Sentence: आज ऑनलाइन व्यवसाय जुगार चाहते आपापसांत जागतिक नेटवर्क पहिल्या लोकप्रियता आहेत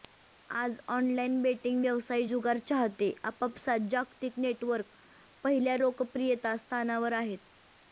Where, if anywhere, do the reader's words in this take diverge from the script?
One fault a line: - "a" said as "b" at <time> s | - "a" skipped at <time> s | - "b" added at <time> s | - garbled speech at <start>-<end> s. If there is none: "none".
- "बेटिंग" added at 1.4 s
- "स्थानावर" added at 6.6 s